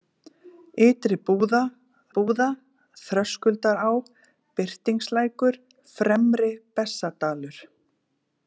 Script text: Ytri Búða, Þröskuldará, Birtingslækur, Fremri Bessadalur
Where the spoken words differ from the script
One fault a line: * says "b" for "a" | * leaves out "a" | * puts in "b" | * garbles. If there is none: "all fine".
* puts in "Búða"